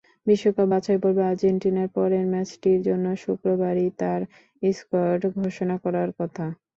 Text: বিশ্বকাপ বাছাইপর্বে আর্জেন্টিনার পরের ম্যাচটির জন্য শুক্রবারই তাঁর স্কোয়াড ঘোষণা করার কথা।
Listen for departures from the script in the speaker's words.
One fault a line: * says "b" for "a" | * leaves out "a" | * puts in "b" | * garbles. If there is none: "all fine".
all fine